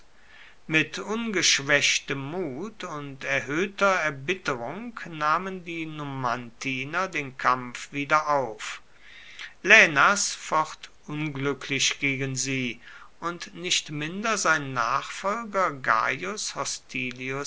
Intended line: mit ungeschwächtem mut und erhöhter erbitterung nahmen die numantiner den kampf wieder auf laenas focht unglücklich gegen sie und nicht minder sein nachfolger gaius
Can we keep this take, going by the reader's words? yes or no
yes